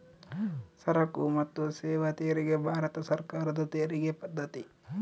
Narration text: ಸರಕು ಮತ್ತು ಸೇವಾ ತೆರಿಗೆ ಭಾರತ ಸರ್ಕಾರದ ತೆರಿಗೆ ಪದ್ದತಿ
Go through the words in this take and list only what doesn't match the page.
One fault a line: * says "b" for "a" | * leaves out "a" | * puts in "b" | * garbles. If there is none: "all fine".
all fine